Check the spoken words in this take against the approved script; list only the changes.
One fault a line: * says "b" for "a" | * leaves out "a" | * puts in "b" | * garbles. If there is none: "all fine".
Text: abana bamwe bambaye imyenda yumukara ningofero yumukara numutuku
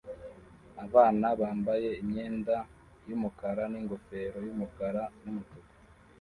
* leaves out "bamwe"